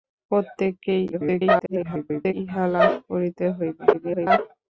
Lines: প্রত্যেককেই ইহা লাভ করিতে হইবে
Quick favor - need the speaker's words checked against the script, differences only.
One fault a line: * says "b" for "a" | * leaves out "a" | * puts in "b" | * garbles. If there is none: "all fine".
* garbles
* garbles